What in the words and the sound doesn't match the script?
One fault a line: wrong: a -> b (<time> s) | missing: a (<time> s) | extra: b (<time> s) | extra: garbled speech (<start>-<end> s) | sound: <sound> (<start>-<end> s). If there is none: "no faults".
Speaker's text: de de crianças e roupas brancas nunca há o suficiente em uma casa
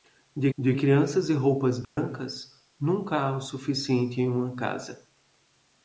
sound: dropout (1.8-2.0 s)